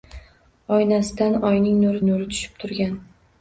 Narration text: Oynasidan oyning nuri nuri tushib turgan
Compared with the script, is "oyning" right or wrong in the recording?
right